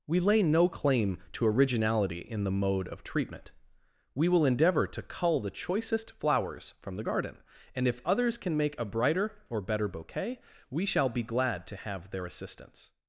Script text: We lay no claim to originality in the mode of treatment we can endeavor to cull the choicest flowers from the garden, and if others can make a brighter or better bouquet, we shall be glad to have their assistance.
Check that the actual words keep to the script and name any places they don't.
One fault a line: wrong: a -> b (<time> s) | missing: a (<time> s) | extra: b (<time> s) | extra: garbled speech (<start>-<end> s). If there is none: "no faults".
wrong: can -> will (4.3 s)